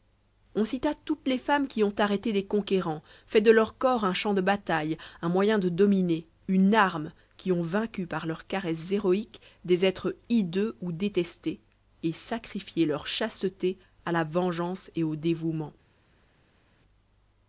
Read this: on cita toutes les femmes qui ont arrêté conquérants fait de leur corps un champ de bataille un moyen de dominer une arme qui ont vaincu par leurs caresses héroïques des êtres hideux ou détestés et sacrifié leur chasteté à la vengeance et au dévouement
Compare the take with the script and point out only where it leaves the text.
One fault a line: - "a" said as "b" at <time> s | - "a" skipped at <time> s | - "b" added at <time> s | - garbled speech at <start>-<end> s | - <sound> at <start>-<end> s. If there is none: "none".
- "des" added at 2.3 s